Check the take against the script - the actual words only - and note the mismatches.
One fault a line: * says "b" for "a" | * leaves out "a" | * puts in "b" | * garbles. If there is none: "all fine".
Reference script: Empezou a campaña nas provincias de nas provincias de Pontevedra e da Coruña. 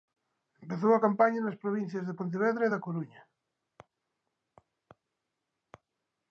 * leaves out "nas provincias de"